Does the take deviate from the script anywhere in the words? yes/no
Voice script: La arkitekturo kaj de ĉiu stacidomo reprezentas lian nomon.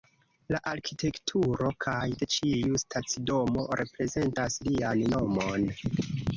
no